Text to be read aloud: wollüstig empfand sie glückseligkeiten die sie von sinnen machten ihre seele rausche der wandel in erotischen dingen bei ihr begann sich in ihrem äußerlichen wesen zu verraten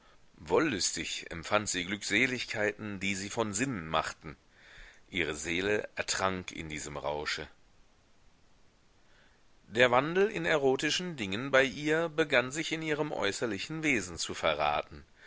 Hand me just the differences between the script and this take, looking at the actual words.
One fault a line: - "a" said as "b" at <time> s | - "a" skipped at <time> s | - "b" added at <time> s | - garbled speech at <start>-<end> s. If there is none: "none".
- "ertrank in diesem" added at 6.0 s